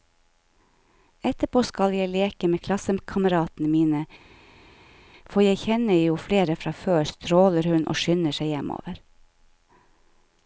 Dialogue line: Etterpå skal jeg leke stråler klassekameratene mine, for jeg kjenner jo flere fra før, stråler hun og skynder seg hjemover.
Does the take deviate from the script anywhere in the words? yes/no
yes